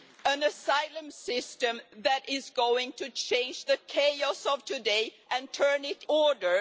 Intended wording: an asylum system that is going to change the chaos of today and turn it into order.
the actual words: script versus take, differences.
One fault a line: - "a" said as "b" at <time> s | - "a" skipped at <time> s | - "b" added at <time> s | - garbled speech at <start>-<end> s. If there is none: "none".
- "into" skipped at 6.0 s